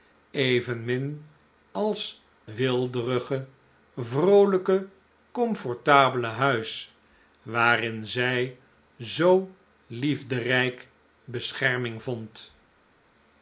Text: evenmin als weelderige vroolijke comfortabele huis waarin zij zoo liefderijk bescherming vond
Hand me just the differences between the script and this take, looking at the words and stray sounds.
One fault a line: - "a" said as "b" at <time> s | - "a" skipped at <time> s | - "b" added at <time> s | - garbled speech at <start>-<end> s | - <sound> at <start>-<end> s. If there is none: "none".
none